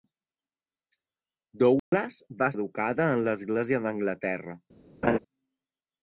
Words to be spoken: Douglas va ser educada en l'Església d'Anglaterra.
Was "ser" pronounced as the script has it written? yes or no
no